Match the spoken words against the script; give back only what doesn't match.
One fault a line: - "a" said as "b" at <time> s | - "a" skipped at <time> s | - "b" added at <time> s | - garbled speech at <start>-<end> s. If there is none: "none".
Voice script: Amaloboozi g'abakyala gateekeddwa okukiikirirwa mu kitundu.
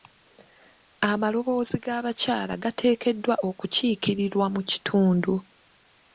none